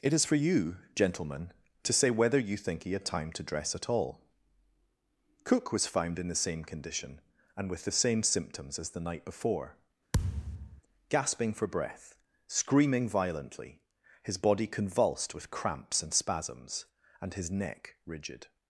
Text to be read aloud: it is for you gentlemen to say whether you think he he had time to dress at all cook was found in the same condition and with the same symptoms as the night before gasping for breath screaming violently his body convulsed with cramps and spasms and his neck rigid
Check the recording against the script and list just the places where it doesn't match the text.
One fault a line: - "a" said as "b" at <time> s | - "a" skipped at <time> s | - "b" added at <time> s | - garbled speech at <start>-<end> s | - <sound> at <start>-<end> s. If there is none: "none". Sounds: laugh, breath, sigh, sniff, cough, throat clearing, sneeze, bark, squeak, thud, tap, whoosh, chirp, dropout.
- "he" skipped at 2.9 s
- thud at 10.1-10.8 s